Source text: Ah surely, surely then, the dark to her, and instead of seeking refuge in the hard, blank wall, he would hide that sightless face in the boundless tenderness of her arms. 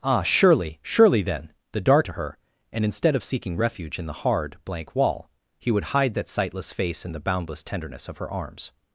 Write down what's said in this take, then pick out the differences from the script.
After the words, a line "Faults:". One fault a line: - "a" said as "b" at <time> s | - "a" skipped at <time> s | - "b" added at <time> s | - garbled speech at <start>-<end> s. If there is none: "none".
Ah surely, surely then, the dark to her, and instead of seeking refuge in the hard, blank wall, he would hide that sightless face in the boundless tenderness of her arms.
Faults:
none